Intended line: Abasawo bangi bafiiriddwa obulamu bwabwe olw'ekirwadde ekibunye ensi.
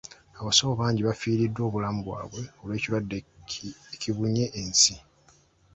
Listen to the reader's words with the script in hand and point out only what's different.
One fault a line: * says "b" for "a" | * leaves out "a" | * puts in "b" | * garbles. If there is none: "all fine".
all fine